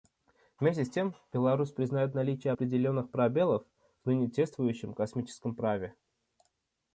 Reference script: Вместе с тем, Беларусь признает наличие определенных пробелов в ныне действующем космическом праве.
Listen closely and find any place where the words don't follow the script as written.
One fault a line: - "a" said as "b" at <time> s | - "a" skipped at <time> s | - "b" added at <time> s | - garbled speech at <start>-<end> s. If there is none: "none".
none